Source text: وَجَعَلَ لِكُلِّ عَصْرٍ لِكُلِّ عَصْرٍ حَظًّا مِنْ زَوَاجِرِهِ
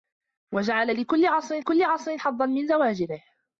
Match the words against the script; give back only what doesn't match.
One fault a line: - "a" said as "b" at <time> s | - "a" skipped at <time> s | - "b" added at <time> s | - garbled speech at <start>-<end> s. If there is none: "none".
none